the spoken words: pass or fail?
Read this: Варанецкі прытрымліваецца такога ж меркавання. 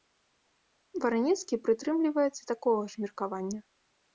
pass